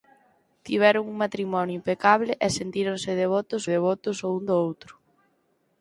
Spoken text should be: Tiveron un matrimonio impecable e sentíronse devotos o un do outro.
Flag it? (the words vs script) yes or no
yes